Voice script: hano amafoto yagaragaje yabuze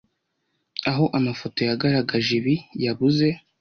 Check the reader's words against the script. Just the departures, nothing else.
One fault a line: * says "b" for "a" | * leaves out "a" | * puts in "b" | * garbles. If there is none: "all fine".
* says "aho" for "hano"
* puts in "ibi"